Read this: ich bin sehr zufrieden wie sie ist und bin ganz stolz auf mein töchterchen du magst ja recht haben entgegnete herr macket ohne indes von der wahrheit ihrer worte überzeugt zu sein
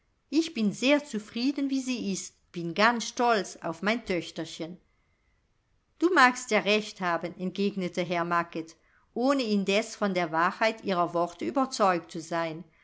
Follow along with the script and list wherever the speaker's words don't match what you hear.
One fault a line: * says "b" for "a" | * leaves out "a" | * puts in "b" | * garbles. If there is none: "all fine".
* leaves out "und"